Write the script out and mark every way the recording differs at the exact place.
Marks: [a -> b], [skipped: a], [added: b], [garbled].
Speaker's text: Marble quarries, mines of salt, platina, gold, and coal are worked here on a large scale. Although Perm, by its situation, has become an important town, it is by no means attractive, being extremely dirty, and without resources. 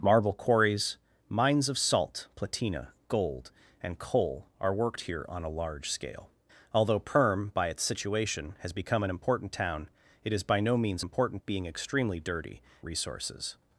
Marble quarries, mines of salt, platina, gold, and coal are worked here on a large scale. Although Perm, by its situation, has become an important town, it is by no means [attractive, -> important] being extremely dirty, [skipped: and without] resources.